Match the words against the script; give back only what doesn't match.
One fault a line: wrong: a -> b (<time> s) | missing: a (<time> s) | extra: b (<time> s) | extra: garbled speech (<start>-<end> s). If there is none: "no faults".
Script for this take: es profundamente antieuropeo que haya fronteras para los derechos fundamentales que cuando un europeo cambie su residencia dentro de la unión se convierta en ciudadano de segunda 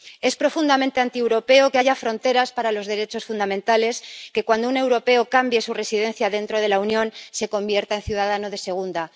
no faults